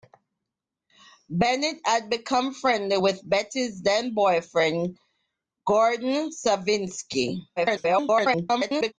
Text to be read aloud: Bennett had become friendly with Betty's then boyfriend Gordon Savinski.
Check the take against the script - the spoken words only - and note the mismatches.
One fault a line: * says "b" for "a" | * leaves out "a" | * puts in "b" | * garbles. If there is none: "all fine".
* garbles